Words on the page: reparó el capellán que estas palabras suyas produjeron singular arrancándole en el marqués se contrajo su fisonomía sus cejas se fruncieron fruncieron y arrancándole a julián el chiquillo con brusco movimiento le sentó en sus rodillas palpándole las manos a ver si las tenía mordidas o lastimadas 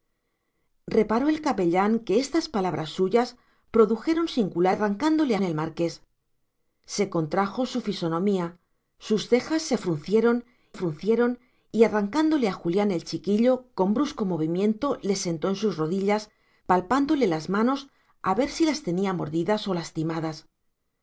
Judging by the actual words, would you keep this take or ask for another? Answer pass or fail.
pass